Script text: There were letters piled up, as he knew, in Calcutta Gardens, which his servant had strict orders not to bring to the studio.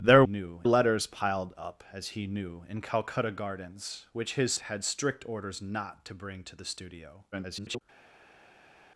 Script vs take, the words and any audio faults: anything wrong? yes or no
yes